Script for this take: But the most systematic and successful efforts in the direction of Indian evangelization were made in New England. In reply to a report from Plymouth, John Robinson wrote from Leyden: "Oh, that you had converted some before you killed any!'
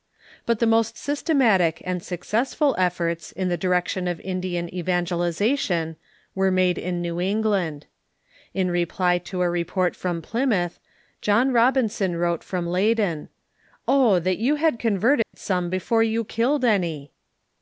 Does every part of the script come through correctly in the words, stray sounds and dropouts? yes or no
no